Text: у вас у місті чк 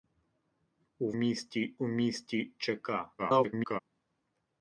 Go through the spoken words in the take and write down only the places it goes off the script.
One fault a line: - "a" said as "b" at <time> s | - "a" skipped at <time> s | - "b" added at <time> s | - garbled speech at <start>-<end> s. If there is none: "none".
- "вас" said as "місті" at 1.1 s
- garbled speech at 3.2-3.8 s